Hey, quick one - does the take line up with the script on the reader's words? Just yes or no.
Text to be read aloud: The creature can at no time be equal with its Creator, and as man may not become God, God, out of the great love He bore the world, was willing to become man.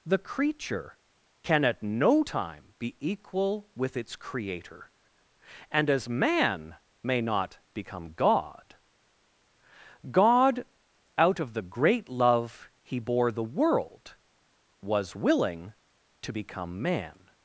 yes